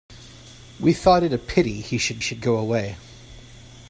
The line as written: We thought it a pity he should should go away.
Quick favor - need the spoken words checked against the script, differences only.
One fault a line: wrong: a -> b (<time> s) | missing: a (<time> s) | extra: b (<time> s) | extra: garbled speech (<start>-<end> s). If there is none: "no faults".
no faults